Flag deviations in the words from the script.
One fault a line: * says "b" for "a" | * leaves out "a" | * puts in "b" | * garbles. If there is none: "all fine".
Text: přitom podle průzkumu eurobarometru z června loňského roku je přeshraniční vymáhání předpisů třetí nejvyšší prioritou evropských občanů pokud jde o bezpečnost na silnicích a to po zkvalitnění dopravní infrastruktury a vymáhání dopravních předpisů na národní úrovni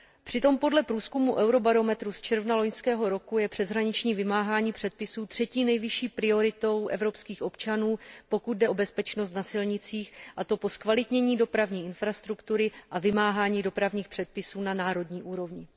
all fine